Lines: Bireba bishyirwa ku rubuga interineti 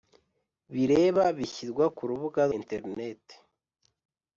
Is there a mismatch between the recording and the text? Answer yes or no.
no